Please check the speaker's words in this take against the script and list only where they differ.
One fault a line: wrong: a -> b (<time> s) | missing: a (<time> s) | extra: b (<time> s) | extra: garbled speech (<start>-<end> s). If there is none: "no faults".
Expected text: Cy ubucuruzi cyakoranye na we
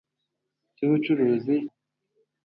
missing: cyakoranye na (1.6 s)